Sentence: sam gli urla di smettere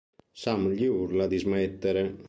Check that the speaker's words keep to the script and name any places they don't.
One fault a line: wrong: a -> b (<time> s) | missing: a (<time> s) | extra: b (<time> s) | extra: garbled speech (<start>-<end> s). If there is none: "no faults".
no faults